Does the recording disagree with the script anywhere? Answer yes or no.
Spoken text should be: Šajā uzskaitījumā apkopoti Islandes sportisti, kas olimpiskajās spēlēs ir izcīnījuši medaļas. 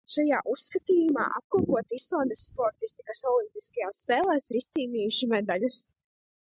no